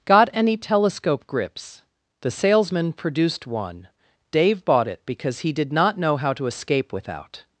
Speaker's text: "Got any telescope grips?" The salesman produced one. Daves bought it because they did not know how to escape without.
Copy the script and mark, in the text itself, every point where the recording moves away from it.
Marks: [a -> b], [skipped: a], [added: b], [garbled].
"Got any telescope grips?" The salesman produced one. [Daves -> Dave] bought it because [they -> he] did not know how to escape without.